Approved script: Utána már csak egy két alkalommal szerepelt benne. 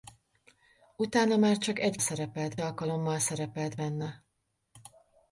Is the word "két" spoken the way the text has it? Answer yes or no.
no